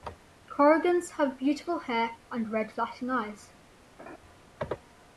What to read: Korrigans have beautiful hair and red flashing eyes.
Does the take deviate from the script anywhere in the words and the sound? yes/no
yes